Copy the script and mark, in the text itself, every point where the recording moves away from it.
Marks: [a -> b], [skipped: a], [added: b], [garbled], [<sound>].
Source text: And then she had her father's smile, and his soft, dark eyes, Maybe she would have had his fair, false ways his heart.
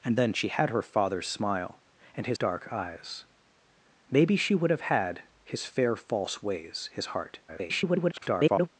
And then she had her father's smile, and his [skipped: soft,] dark eyes, Maybe she would have had his fair, false ways his heart. [garbled]